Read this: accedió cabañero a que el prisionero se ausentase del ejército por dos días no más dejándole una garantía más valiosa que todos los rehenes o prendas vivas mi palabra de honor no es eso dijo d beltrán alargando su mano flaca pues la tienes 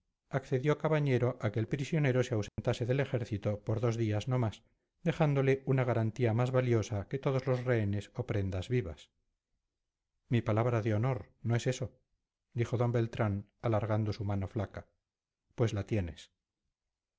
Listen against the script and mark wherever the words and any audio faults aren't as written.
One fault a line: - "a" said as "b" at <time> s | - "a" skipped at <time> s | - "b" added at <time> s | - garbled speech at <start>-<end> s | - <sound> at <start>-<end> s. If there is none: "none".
- dropout at 2.5-2.6 s